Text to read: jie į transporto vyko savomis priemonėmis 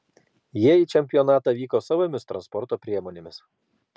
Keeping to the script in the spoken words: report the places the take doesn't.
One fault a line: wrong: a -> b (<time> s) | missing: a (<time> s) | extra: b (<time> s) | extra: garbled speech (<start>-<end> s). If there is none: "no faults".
wrong: transporto -> čempionatą (0.9 s)
extra: transporto (2.3 s)